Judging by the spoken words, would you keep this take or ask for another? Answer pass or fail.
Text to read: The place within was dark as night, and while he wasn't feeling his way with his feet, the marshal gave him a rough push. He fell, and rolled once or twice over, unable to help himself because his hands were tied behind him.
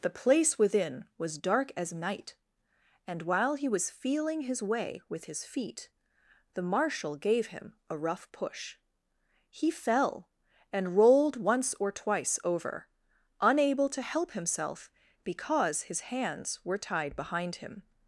fail